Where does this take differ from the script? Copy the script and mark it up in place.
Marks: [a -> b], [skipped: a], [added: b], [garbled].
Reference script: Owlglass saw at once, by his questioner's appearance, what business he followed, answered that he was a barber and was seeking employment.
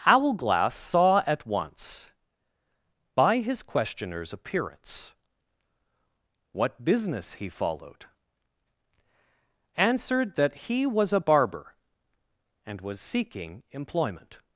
Owlglass saw at once, by his questioner's appearance, what business he followed, answered that he was a barber and was seeking employment.